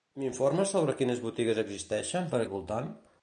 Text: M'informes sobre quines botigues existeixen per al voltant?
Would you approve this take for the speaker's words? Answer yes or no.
yes